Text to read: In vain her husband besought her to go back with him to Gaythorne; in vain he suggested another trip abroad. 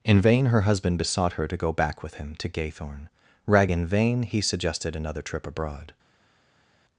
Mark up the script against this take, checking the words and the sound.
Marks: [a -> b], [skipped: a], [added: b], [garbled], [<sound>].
In vain her husband besought her to go back with him to Gaythorne; [added: rag] in vain he suggested another trip abroad.